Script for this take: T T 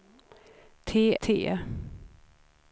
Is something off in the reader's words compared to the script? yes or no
no